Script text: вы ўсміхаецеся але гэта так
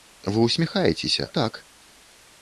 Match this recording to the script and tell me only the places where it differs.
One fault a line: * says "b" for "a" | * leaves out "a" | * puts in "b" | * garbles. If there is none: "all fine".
* leaves out "але гэта"